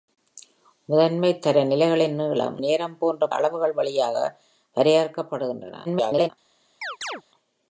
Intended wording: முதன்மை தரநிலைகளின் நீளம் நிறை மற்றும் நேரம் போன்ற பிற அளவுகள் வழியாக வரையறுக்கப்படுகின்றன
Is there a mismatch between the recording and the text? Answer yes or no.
yes